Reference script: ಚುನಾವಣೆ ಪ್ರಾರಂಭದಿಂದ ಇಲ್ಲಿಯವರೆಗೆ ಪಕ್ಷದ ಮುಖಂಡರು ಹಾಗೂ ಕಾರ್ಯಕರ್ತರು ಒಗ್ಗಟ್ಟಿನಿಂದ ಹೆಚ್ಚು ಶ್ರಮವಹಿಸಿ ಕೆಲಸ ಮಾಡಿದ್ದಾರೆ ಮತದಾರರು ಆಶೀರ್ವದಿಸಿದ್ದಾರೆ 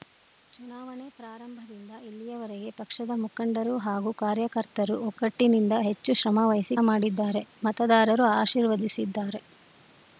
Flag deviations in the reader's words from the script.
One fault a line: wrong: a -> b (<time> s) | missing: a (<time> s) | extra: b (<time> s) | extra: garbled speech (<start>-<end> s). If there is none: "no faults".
missing: ಕೆಲಸ (6.8 s)